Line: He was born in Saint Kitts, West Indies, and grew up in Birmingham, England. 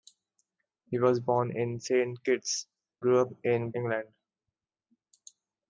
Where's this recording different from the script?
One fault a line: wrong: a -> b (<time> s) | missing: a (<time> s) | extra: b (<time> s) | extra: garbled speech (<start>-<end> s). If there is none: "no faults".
missing: West Indies and (2.7 s)
missing: Birmingham (3.7 s)